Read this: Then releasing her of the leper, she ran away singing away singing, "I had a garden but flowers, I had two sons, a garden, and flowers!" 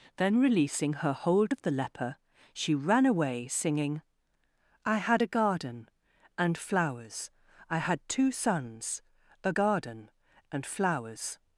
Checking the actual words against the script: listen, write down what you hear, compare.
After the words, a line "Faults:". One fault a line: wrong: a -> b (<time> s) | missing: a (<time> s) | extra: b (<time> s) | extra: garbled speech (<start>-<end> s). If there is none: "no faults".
Then releasing her hold of the leper, she ran away singing, "I had a garden and flowers, I had two sons, a garden, and flowers!"
Faults:
extra: hold (1.1 s)
missing: away singing (4.0 s)
wrong: but -> and (6.4 s)